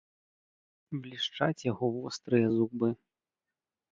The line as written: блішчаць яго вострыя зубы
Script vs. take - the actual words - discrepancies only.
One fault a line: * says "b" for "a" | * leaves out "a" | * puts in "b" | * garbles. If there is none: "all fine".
all fine